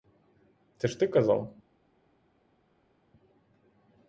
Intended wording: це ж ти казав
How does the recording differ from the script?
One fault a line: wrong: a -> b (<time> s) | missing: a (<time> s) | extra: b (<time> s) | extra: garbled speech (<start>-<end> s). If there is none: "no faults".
no faults